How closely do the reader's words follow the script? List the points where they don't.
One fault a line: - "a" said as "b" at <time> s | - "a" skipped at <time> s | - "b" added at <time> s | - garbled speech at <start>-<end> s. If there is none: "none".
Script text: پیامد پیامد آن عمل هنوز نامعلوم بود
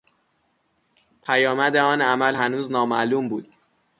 - "پیامد" skipped at 1.8 s